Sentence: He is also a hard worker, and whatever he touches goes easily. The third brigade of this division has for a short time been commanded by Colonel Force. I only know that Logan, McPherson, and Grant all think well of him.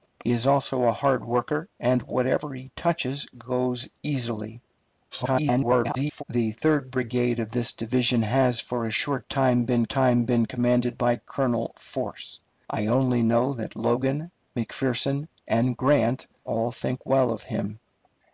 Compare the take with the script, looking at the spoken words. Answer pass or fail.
fail